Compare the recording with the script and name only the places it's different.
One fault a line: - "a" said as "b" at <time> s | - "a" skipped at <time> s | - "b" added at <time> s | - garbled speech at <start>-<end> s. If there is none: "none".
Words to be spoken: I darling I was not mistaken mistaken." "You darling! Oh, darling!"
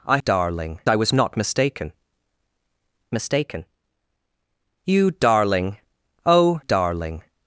none